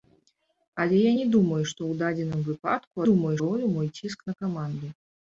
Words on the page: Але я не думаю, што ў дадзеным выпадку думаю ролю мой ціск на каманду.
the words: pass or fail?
pass